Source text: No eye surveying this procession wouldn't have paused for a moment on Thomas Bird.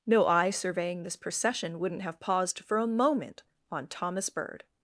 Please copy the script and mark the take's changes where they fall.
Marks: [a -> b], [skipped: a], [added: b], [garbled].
No eye surveying this procession wouldn't have paused for a moment on Thomas Bird.